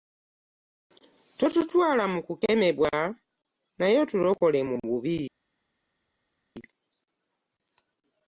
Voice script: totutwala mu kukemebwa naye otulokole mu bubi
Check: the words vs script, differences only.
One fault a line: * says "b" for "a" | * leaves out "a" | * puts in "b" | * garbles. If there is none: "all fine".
all fine